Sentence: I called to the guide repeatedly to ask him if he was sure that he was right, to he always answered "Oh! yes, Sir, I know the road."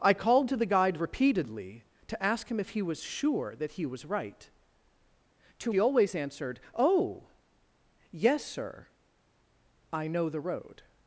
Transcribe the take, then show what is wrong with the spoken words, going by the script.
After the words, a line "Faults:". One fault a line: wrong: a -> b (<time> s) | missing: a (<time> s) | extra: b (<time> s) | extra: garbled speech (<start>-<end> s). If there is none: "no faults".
I called to the guide repeatedly to ask him if he was sure that he was right, to he always answered "Oh! yes, Sir, I know the road."
Faults:
no faults